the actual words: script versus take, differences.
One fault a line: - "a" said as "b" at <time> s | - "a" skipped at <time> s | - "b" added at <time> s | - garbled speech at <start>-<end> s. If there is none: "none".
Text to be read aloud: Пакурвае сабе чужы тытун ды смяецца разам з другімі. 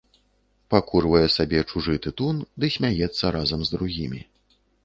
none